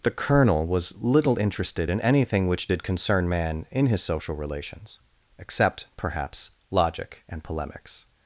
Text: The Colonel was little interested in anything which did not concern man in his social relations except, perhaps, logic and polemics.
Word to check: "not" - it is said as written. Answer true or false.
false